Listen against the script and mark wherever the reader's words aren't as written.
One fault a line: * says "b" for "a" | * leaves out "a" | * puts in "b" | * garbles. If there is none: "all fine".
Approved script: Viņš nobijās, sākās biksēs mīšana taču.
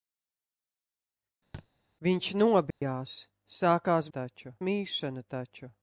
* says "taču" for "biksēs"